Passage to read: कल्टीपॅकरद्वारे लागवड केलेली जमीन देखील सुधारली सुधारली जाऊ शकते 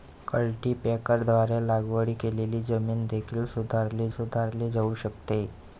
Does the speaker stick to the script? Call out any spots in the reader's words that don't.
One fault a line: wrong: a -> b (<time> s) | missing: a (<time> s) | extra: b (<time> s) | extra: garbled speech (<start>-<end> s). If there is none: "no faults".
no faults